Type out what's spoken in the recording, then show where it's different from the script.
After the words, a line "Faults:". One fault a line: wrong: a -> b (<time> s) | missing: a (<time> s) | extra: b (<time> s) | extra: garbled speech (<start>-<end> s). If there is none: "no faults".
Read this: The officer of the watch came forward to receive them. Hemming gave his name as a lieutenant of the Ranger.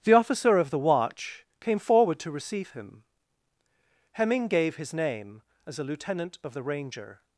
The officer of the watch came forward to receive him. Hemming gave his name as a lieutenant of the Ranger.
Faults:
wrong: them -> him (2.7 s)